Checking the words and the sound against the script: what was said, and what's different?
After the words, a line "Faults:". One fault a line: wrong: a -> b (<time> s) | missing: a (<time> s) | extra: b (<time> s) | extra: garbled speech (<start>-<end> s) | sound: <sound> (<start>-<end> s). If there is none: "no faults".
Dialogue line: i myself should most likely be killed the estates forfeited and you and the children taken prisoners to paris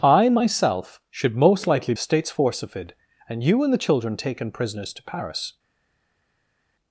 i myself should most likely estates forfeited and you and the children taken prisoners to paris
Faults:
missing: be killed the (1.9 s)